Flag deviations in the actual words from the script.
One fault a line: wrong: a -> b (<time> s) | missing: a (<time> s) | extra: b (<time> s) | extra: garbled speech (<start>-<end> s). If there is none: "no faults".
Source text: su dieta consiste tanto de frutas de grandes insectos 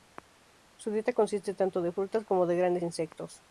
extra: como (2.2 s)